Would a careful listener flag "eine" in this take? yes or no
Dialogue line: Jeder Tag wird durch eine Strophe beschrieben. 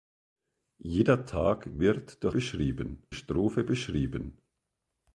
yes